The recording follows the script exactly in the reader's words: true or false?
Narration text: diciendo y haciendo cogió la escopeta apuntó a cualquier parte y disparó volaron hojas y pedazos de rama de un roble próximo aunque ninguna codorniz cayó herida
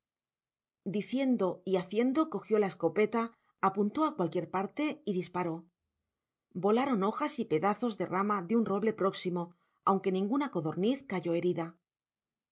true